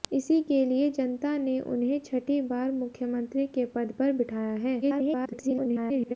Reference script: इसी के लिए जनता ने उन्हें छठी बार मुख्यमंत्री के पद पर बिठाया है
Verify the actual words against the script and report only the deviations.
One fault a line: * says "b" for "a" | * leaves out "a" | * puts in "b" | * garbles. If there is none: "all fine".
* garbles